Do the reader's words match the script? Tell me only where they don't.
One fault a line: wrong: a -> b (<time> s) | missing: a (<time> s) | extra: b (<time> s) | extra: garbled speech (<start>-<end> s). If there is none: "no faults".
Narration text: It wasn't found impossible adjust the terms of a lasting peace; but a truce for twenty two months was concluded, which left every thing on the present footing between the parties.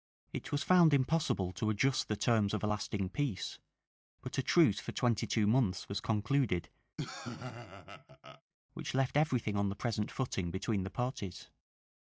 wrong: wasn't -> was (0.5 s)
extra: to (1.5 s)